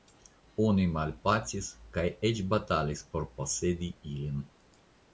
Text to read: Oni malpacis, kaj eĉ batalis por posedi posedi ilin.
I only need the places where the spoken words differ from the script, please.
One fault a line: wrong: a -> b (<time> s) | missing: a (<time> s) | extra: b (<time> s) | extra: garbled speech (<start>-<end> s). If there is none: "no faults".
missing: posedi (4.0 s)